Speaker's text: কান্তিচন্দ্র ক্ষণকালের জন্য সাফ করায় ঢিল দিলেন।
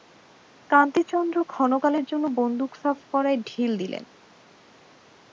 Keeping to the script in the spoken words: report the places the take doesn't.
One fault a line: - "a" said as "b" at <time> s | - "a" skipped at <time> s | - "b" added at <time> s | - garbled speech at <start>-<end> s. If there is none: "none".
- "বন্দুক" added at 2.4 s